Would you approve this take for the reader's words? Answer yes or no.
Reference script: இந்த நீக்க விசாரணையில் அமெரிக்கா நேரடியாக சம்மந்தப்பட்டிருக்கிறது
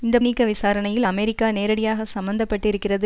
yes